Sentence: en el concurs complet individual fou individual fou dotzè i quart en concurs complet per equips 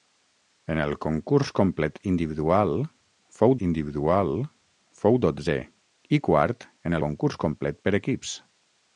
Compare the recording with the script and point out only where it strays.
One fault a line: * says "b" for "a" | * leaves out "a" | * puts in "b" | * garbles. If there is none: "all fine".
all fine